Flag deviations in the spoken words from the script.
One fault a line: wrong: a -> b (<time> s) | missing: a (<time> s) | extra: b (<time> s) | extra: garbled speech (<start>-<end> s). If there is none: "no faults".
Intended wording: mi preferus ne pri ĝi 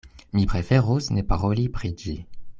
extra: paroli (1.3 s)